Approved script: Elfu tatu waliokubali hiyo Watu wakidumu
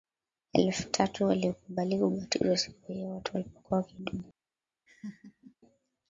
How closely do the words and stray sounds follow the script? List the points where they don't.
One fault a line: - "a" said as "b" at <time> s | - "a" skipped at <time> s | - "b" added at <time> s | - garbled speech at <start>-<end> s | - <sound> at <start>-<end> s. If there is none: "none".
- "kubatizwa siku" added at 2.0 s
- "walipokuwa" added at 3.3 s
- laugh at 4.9-5.6 s